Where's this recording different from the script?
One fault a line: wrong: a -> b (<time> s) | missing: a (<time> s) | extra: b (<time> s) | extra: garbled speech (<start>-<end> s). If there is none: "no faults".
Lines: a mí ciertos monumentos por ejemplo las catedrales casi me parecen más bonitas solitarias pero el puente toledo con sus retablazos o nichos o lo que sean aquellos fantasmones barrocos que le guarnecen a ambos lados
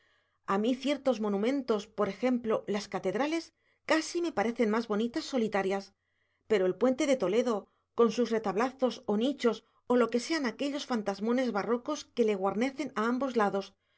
extra: de (7.1 s)